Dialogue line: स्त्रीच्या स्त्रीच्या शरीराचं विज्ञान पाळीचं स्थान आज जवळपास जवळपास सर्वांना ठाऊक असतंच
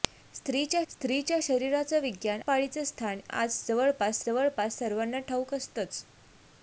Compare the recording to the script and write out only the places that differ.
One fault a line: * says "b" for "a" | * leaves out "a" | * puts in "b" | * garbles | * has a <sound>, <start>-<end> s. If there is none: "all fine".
all fine